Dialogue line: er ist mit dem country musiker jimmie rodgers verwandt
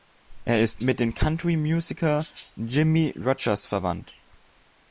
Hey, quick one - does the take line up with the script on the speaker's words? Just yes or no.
yes